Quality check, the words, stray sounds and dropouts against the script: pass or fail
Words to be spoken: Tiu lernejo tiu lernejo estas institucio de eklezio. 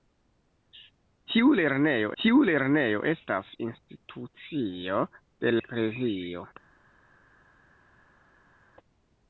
pass